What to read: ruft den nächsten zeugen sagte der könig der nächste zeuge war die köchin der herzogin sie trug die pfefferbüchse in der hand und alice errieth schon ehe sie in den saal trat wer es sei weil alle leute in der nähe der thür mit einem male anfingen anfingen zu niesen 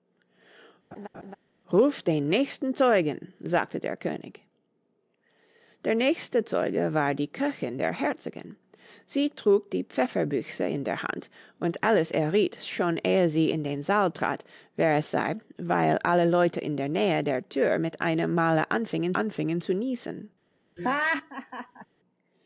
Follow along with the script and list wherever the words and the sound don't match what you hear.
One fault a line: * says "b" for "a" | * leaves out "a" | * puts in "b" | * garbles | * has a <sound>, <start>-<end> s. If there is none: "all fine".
* has a laugh, 0.9-1.4 s
* has a laugh, 20.8-21.9 s